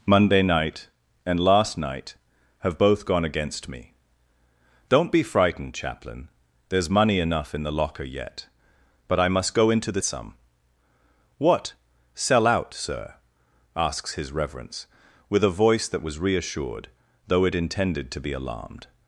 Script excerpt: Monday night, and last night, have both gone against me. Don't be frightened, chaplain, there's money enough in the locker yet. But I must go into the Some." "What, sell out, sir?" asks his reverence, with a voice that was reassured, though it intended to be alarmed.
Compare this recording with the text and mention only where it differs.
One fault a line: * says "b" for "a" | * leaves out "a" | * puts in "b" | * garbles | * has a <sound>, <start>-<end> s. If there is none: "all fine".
all fine